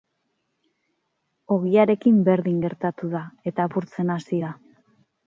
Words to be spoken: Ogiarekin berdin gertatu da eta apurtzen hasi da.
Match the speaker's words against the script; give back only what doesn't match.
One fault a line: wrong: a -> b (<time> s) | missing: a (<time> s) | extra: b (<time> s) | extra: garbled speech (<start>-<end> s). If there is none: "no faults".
no faults